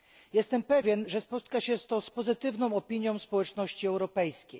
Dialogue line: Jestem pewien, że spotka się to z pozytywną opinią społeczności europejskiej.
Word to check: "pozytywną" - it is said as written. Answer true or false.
true